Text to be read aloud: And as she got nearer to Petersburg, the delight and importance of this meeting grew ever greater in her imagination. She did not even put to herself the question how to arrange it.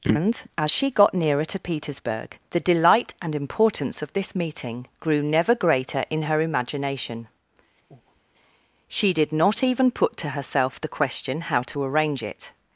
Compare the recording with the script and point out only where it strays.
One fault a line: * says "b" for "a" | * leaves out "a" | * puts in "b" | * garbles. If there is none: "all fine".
* says "never" for "ever"